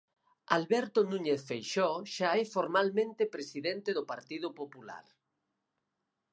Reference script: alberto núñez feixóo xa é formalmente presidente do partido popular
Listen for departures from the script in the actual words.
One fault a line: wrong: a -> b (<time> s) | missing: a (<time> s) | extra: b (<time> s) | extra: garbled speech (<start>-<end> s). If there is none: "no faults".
no faults